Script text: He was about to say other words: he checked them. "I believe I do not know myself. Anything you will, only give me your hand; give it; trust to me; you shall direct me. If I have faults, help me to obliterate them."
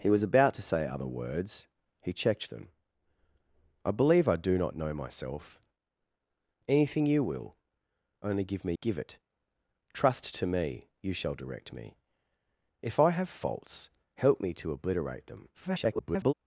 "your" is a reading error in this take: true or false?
true